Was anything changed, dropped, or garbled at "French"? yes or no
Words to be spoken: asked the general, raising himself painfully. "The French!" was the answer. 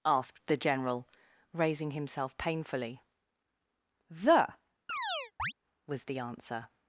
yes